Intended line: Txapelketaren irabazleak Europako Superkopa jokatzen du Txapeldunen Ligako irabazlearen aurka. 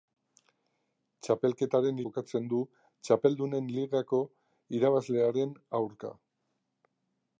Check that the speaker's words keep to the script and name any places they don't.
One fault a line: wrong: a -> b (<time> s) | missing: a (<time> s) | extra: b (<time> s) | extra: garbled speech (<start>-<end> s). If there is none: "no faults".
missing: irabazleak Europako Superkopa (2.0 s)